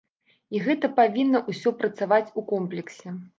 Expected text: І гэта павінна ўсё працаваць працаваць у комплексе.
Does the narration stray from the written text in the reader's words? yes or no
yes